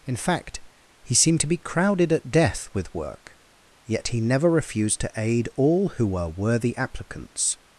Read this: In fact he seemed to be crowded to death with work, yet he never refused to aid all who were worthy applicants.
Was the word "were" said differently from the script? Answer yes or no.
no